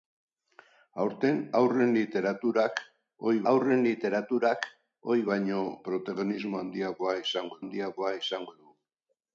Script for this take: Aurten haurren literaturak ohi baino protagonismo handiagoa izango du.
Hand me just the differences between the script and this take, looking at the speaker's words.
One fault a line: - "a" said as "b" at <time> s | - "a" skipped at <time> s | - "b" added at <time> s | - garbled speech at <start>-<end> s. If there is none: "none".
- "haurren literaturak ohi" added at 3.5 s
- "handiagoa izango" added at 7.6 s